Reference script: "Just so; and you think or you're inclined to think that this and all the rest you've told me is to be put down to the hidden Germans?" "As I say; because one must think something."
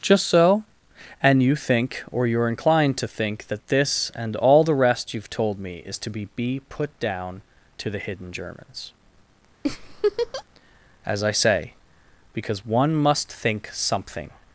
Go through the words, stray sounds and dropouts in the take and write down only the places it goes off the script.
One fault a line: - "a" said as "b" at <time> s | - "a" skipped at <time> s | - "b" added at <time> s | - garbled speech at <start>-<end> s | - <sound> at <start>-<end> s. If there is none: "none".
- "be" added at 6.3 s
- laugh at 9.6-10.4 s